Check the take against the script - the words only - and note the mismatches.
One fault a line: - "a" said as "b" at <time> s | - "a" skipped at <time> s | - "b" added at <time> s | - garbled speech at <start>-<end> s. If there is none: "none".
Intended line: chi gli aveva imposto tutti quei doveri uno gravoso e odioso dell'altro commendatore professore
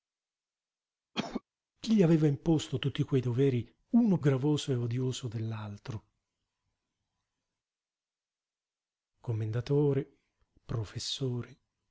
none